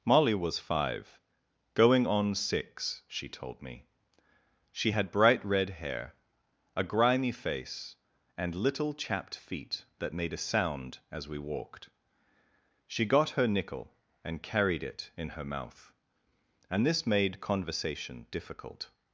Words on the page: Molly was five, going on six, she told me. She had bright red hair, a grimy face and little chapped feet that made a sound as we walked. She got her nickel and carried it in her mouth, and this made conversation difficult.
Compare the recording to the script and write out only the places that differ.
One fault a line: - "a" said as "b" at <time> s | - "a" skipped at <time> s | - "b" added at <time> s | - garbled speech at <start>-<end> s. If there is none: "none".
none